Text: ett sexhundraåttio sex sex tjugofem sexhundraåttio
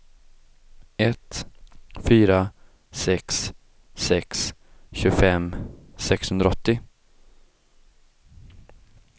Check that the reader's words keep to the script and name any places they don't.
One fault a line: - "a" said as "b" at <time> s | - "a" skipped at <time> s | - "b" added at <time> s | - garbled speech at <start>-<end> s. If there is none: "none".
- "sexhundraåttio" said as "fyra" at 1.9 s